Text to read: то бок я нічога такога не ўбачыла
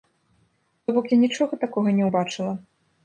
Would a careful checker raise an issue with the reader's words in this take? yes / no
no